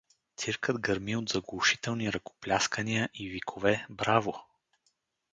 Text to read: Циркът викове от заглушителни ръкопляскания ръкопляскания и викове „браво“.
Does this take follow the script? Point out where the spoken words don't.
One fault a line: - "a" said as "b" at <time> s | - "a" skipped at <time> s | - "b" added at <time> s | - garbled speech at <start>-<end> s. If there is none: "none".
- "викове" said as "гърми" at 0.8 s
- "ръкопляскания" skipped at 3.1 s